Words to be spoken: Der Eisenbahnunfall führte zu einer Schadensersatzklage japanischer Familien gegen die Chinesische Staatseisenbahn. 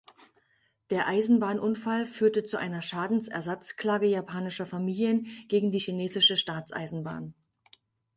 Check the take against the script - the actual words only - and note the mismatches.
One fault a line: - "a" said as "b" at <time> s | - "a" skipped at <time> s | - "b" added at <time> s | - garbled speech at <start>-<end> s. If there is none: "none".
none